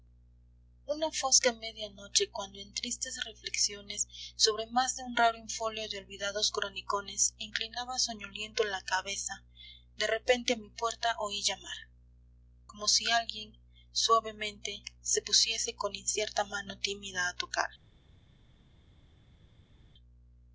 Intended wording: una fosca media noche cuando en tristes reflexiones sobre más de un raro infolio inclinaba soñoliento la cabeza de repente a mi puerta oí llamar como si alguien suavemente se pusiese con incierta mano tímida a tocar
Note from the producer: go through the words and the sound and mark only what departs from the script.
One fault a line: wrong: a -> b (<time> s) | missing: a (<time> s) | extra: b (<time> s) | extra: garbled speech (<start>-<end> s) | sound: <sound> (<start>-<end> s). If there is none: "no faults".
extra: de olvidados cronicones (5.9 s)